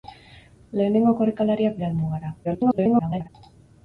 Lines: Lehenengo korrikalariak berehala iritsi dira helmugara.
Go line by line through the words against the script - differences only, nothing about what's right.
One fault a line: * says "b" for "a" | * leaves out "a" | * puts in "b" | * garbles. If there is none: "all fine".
* leaves out "berehala iritsi"
* garbles